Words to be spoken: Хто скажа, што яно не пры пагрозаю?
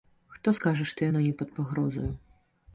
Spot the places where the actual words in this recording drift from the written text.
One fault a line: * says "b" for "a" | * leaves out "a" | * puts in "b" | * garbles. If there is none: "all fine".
* says "пад" for "пры"